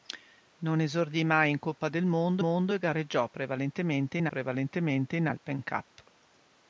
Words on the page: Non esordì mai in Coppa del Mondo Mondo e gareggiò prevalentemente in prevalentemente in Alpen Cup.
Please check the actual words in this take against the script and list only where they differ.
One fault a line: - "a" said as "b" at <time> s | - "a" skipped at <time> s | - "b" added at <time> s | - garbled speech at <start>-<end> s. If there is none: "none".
none